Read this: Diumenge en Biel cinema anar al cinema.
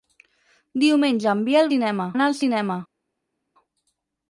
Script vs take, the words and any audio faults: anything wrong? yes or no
no